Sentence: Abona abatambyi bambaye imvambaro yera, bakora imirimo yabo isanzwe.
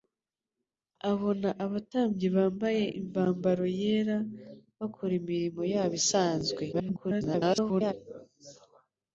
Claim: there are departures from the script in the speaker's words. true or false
true